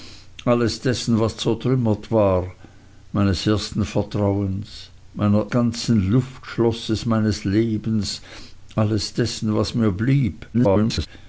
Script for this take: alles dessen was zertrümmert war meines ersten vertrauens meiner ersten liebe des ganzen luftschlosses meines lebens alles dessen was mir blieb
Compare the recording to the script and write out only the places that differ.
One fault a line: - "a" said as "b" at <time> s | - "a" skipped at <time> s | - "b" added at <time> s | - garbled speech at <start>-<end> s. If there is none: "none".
- "ersten liebe des" skipped at 5.5 s
- garbled speech at 10.5-11.1 s